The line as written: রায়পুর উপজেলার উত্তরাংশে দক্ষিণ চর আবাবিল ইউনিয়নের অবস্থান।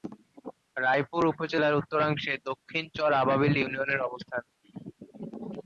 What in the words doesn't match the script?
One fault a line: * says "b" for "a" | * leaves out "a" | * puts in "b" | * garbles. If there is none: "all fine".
all fine